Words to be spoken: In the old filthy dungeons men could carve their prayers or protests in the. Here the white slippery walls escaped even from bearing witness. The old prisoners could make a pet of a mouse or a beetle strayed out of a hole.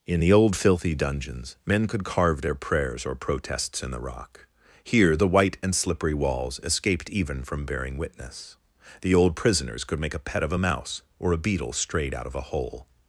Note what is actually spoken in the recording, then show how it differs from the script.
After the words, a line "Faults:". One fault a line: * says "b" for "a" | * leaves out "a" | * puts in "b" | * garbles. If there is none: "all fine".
In the old filthy dungeons men could carve their prayers or protests in the rock. Here the white and slippery walls escaped even from bearing witness. The old prisoners could make a pet of a mouse or a beetle strayed out of a hole.
Faults:
* puts in "rock"
* puts in "and"